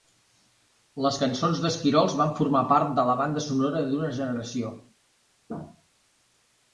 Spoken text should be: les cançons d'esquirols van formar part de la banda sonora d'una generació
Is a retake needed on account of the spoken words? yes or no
no